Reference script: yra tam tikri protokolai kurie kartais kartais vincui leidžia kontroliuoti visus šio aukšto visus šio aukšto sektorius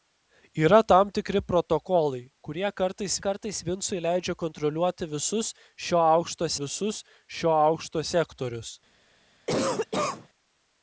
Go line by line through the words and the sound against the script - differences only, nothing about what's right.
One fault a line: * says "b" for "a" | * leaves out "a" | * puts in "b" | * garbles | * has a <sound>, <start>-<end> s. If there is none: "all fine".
* has a cough, 9.5-10.3 s